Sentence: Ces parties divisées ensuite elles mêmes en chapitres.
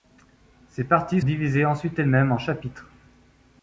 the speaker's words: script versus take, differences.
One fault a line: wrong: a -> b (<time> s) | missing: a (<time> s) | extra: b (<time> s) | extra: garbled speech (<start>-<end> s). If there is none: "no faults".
no faults